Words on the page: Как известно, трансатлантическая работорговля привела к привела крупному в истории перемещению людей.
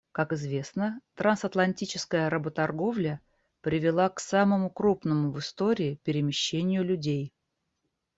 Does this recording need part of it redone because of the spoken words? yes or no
yes